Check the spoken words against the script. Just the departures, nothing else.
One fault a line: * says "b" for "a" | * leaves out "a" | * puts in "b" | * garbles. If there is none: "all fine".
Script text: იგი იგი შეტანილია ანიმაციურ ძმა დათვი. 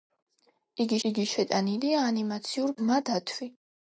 all fine